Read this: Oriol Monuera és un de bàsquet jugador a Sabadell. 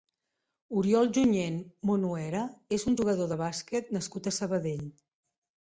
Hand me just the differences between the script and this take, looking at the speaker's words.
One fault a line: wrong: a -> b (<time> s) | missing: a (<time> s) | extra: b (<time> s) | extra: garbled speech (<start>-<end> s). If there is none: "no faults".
extra: Junyent (1.2 s)
extra: jugador (3.0 s)
wrong: jugador -> nascut (4.0 s)